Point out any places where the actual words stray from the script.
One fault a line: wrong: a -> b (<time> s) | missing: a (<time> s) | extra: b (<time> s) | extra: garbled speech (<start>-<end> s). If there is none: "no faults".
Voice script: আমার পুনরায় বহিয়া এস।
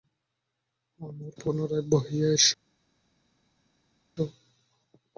no faults